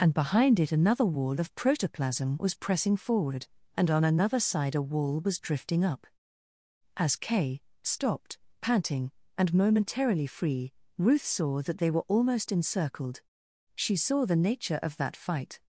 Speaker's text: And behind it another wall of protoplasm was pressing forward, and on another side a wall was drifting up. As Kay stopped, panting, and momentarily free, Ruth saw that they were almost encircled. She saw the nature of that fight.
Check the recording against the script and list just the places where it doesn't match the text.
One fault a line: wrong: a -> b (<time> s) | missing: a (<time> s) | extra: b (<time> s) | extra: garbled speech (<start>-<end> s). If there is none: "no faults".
no faults